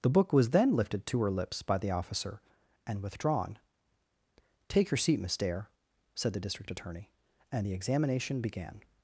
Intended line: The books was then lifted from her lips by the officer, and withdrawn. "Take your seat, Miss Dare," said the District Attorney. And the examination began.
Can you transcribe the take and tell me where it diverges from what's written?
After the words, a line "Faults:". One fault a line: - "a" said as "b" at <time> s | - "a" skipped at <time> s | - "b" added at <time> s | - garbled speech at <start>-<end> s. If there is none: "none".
The book was then lifted to her lips by the officer, and withdrawn. "Take your seat, Miss Dare," said the District Attorney. And the examination began.
Faults:
- "books" said as "book" at 0.1 s
- "from" said as "to" at 1.1 s